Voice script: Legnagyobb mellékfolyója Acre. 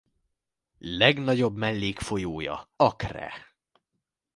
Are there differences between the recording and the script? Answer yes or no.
no